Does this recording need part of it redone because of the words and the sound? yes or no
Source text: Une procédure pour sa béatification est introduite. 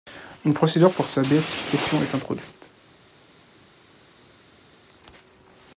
no